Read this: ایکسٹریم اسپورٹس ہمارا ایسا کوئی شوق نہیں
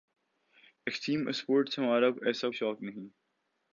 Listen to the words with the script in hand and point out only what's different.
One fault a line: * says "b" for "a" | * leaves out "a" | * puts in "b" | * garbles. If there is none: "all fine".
* leaves out "کوئی"